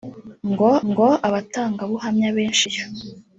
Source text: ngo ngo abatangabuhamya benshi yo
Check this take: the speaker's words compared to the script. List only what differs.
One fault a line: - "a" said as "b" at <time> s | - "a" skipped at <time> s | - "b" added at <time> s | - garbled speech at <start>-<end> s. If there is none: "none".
none